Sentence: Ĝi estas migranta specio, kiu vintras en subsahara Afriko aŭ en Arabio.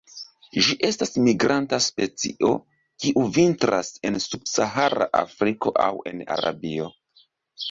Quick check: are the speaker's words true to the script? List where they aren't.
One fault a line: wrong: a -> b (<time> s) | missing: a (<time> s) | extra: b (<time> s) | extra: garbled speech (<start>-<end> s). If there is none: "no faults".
no faults